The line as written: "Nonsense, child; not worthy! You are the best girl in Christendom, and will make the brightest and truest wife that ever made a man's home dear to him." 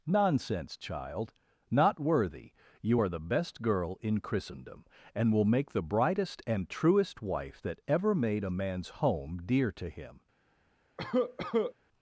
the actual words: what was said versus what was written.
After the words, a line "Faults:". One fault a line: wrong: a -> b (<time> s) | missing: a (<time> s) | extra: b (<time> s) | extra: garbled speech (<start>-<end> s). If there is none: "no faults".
"Nonsense, child; not worthy! You are the best girl in Christendom, and will make the brightest and truest wife that ever made a man's home dear to him."
Faults:
no faults